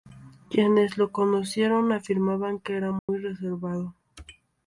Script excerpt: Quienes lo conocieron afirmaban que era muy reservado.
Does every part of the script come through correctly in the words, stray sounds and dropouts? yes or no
no